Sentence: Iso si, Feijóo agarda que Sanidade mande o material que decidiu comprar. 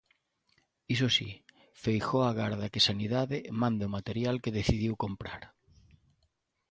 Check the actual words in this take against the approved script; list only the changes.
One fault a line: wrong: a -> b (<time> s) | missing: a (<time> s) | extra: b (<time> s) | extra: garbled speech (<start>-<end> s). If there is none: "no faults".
no faults